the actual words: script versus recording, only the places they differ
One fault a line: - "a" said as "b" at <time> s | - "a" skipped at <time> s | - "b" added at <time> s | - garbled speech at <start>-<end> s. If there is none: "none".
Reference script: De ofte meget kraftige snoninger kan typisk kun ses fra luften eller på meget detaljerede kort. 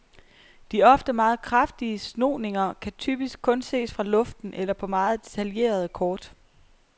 none